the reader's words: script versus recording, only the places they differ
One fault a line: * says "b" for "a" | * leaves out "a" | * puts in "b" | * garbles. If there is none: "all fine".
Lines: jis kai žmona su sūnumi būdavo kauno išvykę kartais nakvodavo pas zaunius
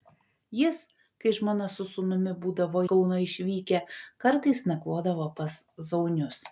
all fine